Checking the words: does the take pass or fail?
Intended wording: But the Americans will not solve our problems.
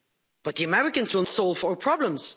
fail